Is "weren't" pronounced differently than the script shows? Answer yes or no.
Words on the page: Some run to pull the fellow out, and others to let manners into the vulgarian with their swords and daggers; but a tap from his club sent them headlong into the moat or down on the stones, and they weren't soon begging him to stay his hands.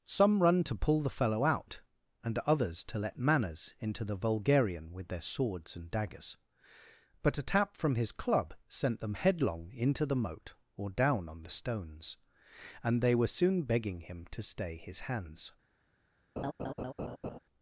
yes